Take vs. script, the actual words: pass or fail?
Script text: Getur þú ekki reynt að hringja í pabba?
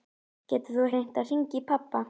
fail